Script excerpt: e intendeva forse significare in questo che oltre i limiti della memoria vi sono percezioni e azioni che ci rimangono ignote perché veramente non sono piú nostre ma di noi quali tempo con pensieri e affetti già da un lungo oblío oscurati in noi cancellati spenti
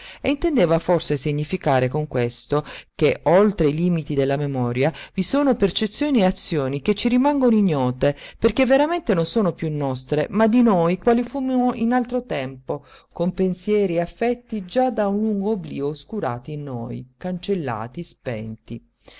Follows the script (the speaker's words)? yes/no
no